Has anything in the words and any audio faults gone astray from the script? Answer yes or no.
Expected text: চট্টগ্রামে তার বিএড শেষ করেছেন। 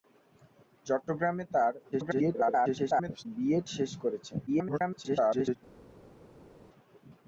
yes